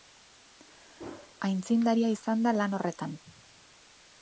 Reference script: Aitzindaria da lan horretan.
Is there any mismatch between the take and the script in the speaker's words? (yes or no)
yes